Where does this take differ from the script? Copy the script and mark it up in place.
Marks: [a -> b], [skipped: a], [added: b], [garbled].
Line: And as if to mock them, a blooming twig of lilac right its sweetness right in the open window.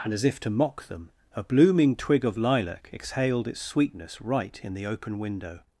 And as if to mock them, a blooming twig of lilac [right -> exhaled] its sweetness right in the open window.